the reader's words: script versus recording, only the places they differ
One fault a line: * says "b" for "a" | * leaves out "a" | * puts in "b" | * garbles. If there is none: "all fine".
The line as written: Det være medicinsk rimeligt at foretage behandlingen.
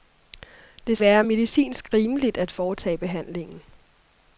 all fine